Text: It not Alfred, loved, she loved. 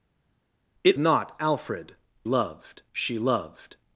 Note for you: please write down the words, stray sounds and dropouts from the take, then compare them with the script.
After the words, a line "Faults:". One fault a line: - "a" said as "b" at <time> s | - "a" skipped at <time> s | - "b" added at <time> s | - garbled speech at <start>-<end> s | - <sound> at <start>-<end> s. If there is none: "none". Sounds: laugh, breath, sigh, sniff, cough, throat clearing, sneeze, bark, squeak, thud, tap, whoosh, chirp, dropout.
It not Alfred, loved, she loved.
Faults:
none